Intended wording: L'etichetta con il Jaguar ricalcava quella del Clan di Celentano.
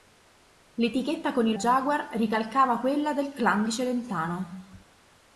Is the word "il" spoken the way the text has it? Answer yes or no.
yes